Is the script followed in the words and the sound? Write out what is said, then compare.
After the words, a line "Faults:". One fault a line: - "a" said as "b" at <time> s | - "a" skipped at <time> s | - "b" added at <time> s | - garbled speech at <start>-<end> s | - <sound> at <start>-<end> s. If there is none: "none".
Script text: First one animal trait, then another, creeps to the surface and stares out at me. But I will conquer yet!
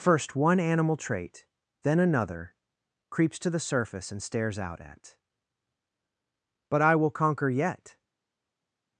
First one animal trait, then another, creeps to the surface and stares out at. But I will conquer yet!
Faults:
- "me" skipped at 5.2 s